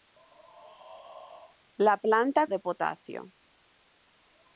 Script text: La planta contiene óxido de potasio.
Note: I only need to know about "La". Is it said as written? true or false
true